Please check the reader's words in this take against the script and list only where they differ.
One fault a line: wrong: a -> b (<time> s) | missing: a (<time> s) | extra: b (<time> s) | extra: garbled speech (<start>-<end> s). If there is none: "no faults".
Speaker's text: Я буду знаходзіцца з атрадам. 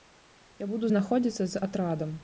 no faults